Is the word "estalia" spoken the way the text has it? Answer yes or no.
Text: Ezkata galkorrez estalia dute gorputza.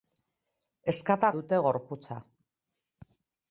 no